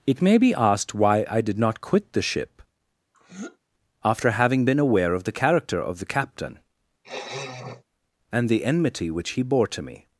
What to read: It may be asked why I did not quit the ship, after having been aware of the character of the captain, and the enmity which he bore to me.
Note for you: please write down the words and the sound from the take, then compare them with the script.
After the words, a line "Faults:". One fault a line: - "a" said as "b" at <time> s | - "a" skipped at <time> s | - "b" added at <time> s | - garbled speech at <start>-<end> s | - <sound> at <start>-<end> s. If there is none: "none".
It may be asked why I did not quit the ship, after having been aware of the character of the captain, and the enmity which he bore to me.
Faults:
- throat clearing at 3.1-3.6 s
- sniff at 7.0-7.8 s